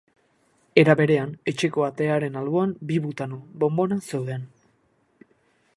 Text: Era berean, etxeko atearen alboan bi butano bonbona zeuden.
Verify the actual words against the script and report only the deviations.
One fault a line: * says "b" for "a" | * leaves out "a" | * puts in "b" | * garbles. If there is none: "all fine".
all fine